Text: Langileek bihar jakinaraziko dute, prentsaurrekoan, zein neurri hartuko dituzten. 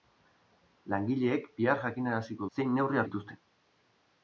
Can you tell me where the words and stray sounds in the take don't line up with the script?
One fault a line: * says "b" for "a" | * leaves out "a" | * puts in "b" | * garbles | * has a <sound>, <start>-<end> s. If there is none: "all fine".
* leaves out "dute prentsaurrekoan"
* leaves out "hartuko"